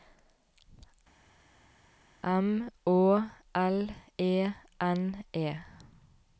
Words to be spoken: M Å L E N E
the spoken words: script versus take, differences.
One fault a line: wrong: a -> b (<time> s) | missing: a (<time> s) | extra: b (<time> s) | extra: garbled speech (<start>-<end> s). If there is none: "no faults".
no faults